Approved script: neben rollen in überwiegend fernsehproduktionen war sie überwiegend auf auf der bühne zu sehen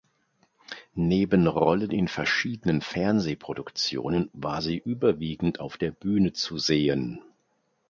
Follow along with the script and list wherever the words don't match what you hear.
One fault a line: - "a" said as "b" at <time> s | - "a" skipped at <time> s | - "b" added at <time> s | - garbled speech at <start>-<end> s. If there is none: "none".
- "überwiegend" said as "verschiedenen" at 2.1 s
- "auf" skipped at 5.7 s